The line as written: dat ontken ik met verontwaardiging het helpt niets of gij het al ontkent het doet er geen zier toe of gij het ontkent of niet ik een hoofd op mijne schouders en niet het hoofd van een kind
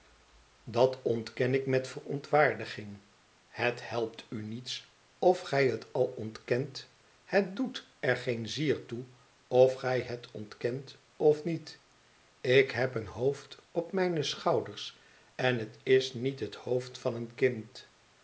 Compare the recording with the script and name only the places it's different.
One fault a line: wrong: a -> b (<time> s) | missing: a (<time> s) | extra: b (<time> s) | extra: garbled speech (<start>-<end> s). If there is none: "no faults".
extra: u (4.3 s)
extra: heb (12.7 s)
extra: het is (15.6 s)